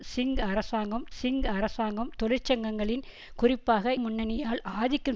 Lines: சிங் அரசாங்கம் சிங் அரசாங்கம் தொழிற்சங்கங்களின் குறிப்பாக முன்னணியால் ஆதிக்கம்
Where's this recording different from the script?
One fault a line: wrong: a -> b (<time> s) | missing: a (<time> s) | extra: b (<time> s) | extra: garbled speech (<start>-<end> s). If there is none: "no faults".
no faults